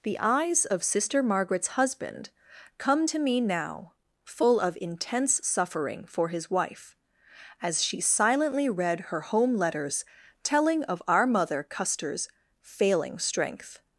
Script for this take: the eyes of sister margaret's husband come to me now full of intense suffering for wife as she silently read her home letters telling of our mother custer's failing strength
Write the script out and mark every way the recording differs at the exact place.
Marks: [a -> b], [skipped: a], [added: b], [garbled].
the eyes of sister margaret's husband come to me now full of intense suffering for [added: his] wife as she silently read her home letters telling of our mother custer's failing strength